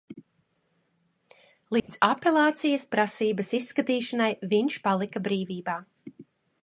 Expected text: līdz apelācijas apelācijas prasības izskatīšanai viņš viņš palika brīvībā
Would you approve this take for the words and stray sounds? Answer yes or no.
no